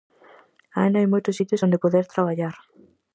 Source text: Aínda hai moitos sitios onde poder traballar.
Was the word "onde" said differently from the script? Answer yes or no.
no